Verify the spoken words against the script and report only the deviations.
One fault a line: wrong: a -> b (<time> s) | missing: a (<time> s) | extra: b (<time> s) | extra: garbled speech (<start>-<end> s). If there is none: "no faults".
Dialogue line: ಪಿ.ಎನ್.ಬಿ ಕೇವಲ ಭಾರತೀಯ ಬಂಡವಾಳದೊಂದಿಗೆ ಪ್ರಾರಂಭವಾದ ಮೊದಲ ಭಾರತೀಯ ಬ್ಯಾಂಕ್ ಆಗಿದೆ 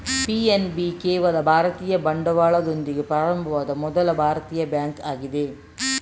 no faults